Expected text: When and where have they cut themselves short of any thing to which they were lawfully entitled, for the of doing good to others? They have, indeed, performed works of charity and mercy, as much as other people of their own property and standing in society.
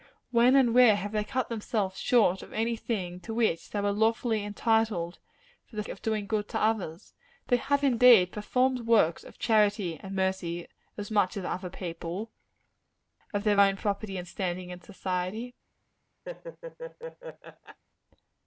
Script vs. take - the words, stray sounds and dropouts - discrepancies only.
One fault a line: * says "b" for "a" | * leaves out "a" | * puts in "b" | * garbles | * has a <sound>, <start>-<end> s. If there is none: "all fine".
* has a laugh, 16.3-17.8 s